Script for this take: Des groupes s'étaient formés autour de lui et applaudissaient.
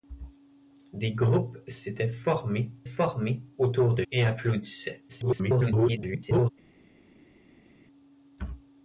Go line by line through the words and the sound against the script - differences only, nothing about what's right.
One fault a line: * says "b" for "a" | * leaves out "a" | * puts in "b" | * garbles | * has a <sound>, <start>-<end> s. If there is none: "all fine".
* puts in "formés"
* leaves out "lui"
* garbles